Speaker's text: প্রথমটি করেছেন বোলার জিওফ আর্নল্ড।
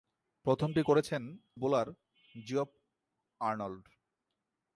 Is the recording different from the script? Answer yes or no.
no